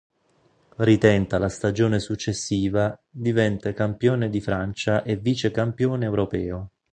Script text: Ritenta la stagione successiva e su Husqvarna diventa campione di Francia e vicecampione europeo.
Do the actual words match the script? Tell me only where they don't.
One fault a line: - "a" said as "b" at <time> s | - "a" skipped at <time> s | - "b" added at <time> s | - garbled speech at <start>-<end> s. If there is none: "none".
- "e su Husqvarna" skipped at 3.0 s